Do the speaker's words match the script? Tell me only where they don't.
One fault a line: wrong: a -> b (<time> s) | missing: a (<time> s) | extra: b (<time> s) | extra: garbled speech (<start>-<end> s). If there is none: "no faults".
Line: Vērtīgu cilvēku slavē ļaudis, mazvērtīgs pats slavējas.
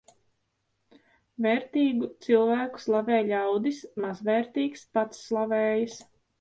no faults